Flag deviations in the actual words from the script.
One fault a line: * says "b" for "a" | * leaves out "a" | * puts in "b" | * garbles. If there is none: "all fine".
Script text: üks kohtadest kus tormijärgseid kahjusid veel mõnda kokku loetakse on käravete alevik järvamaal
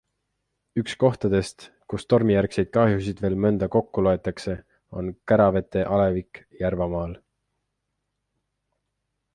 all fine